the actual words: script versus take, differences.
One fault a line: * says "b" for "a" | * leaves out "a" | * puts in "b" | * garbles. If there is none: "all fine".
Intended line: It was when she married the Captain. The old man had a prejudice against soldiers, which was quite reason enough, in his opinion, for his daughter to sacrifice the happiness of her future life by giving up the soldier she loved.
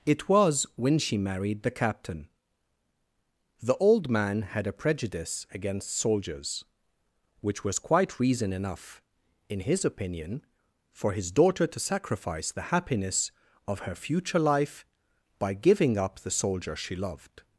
all fine